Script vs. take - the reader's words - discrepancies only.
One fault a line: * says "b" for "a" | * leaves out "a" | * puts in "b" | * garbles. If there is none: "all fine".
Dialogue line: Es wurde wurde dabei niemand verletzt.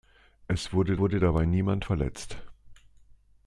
all fine